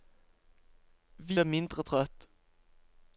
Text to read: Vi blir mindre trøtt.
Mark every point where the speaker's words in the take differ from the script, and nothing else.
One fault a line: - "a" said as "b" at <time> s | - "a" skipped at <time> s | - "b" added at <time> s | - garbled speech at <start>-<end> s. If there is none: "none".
none